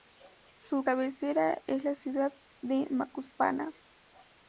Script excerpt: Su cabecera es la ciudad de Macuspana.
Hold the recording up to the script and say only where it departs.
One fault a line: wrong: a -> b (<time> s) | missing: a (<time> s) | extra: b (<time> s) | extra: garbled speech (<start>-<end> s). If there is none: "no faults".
no faults